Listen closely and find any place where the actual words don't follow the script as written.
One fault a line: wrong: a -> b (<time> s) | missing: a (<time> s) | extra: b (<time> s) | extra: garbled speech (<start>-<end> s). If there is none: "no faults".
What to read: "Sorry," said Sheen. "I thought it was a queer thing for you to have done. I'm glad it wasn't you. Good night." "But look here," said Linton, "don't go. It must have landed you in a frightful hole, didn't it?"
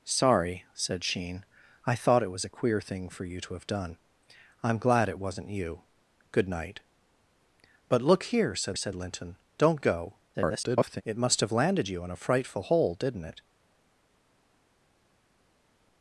extra: said (8.7 s)
extra: garbled speech (10.3-11.0 s)